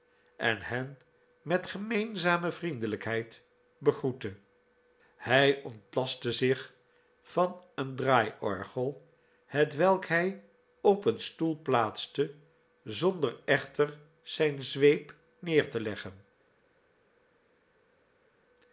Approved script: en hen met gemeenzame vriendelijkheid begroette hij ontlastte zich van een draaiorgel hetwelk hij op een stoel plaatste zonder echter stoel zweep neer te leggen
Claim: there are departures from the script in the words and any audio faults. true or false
true